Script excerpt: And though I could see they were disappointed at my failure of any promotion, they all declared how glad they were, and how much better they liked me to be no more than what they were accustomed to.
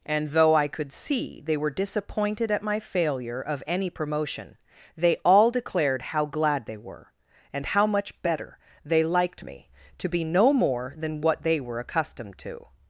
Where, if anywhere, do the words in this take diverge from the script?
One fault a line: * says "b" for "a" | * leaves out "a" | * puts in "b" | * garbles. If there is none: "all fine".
all fine